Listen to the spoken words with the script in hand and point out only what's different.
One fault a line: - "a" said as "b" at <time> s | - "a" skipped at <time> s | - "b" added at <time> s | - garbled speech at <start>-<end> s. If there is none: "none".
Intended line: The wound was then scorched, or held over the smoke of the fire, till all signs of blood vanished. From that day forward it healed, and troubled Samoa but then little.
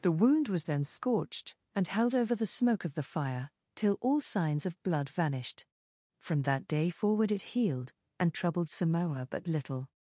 - "or" said as "and" at 1.8 s
- "then" skipped at 9.5 s